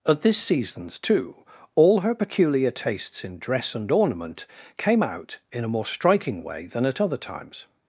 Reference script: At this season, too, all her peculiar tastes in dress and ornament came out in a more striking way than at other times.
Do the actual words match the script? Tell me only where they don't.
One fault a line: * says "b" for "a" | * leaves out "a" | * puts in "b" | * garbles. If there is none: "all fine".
* says "seasons" for "season"